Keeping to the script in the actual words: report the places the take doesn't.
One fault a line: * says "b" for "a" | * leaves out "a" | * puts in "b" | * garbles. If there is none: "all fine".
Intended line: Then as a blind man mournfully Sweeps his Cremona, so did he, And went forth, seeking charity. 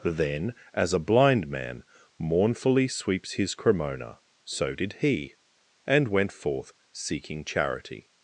all fine